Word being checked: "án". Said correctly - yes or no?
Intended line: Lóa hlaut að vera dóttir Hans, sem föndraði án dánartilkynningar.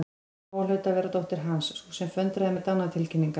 no